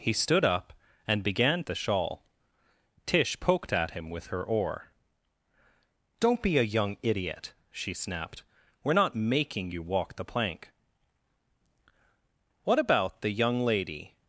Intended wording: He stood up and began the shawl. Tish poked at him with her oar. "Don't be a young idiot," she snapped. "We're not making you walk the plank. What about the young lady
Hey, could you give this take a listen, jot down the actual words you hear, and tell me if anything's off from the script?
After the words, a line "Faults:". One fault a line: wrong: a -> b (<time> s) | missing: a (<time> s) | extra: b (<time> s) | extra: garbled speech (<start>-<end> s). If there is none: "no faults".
He stood up and began the shawl. Tish poked at him with her oar. "Don't be a young idiot," she snapped. "We're not making you walk the plank. What about the young lady
Faults:
no faults